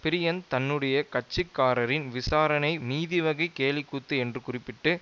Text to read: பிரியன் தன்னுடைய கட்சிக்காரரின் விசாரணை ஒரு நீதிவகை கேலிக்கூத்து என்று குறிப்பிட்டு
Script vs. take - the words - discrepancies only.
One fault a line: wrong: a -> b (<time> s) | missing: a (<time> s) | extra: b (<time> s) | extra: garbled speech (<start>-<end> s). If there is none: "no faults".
missing: ஒரு (2.7 s)